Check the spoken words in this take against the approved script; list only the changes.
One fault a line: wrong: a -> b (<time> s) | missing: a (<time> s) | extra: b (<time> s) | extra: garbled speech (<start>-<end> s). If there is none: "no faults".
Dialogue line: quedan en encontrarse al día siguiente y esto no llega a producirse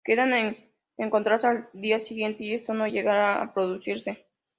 no faults